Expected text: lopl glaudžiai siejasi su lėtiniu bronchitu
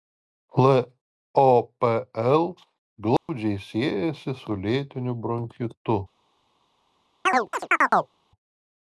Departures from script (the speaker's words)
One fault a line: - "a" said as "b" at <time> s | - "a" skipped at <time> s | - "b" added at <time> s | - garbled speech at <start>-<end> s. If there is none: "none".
none